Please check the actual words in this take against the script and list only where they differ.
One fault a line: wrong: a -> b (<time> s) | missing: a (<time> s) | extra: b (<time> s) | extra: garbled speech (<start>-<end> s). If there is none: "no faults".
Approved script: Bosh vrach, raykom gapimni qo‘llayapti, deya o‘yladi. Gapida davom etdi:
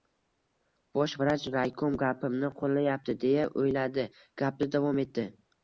no faults